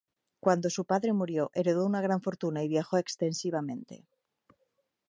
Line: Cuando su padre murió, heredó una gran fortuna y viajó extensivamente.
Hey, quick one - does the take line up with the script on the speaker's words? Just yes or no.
yes